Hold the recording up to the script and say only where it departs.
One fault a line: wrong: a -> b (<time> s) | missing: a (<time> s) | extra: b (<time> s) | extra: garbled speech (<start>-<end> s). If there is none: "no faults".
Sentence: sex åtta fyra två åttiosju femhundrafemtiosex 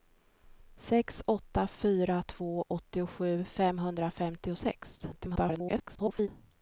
extra: garbled speech (5.1-6.3 s)